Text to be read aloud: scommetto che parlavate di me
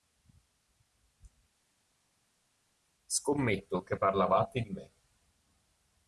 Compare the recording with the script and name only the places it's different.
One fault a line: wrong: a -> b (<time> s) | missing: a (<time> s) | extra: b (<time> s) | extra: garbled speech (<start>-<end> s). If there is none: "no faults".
no faults